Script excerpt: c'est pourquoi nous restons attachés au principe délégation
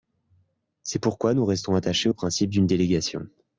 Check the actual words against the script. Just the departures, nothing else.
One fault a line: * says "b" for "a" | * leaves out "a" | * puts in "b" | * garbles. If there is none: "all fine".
* puts in "d'une"